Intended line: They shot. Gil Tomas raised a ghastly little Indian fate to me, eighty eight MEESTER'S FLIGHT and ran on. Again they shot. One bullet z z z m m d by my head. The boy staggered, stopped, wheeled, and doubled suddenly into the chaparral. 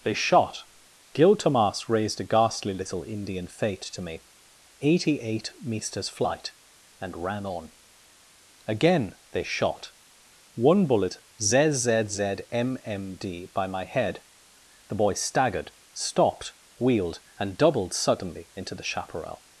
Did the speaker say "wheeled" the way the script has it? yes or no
yes